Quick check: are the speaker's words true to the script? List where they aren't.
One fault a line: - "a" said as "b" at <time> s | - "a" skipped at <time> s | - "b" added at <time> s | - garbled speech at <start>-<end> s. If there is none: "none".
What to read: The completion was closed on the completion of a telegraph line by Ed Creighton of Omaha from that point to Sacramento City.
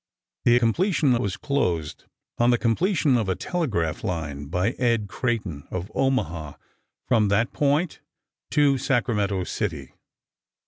none